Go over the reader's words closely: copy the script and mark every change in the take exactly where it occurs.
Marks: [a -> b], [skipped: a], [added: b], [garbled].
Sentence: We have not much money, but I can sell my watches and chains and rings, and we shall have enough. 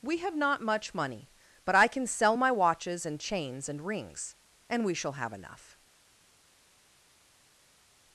We have not much money, but I can sell my watches and chains and rings, and we shall have enough.